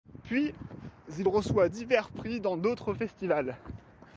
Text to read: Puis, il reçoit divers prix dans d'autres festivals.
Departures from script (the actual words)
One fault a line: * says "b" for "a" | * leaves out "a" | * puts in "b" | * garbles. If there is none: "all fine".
all fine